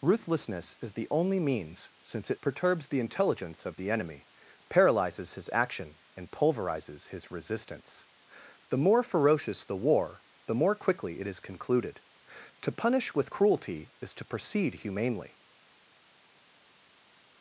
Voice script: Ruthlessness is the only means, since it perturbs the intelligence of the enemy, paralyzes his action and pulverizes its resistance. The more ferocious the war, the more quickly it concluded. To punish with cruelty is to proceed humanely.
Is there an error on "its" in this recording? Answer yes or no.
yes